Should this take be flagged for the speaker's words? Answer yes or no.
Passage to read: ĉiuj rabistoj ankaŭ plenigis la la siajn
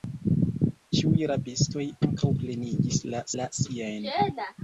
no